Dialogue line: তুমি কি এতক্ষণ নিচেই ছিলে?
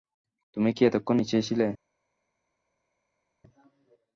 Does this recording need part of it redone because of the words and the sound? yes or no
no